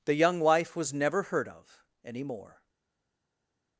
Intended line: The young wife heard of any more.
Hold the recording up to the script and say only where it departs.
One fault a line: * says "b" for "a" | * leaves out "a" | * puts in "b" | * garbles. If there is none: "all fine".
* puts in "was never"